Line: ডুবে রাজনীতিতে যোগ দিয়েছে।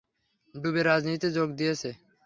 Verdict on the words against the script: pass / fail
pass